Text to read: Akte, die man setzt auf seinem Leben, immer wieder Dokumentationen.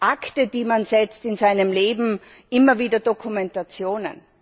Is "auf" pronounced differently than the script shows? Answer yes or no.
yes